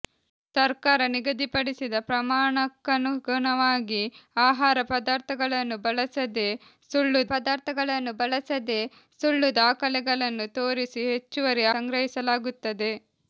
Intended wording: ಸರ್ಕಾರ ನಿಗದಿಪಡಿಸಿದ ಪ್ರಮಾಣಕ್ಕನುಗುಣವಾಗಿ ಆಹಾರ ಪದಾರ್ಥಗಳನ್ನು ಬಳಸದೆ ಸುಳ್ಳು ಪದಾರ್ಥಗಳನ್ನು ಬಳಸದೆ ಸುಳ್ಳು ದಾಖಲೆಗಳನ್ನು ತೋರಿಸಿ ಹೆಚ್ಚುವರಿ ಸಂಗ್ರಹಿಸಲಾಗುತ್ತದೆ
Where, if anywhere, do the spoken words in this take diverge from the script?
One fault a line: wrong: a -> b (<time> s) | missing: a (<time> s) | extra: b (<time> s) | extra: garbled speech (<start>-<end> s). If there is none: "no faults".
no faults